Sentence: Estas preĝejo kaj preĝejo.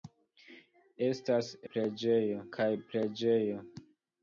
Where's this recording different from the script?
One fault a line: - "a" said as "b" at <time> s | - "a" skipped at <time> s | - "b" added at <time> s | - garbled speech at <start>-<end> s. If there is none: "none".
none